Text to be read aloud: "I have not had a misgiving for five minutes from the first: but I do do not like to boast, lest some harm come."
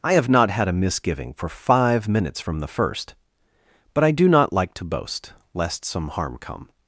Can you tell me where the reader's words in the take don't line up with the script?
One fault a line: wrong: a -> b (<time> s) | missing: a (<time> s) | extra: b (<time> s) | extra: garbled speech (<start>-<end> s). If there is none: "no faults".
missing: do (4.3 s)